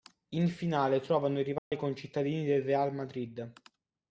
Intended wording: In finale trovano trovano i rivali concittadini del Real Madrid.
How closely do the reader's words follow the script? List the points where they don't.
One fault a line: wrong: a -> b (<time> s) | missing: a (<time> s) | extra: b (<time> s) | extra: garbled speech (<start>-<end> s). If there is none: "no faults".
missing: trovano (1.4 s)